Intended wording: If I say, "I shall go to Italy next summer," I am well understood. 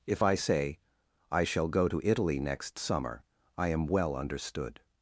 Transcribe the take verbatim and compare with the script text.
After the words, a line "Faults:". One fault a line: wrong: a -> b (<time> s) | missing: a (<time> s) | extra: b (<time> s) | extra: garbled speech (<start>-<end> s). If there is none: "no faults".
If I say, "I shall go to Italy next summer," I am well understood.
Faults:
no faults